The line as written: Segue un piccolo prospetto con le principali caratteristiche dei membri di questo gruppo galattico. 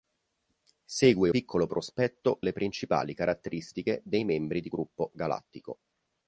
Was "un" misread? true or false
true